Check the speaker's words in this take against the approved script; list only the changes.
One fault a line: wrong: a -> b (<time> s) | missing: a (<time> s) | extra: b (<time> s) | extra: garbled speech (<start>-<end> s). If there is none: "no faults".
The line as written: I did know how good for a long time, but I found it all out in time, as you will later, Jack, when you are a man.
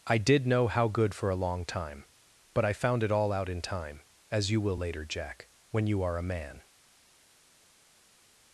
no faults